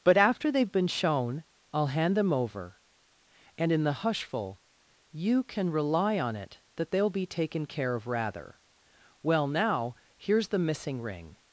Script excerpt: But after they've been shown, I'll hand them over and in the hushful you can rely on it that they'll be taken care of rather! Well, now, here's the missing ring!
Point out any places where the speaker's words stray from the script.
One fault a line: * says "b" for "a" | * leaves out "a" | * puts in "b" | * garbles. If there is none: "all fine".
all fine